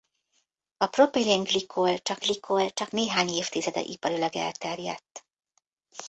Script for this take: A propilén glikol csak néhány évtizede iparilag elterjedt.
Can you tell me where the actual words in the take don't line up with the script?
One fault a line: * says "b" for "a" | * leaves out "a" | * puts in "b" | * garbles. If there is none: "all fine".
* puts in "glikol csak"